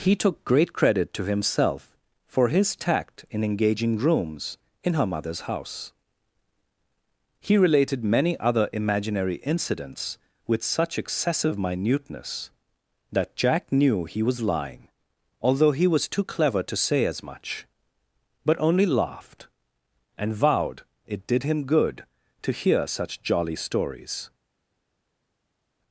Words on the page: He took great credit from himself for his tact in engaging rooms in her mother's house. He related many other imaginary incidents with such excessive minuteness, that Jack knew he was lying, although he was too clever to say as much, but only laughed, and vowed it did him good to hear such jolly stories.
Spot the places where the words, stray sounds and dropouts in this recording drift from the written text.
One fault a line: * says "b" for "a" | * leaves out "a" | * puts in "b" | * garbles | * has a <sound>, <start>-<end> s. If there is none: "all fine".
* says "to" for "from"